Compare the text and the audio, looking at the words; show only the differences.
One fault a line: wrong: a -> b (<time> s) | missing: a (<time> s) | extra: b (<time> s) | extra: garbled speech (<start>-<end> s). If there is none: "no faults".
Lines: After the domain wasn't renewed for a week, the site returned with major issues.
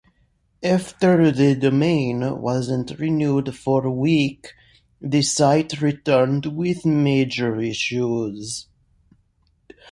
no faults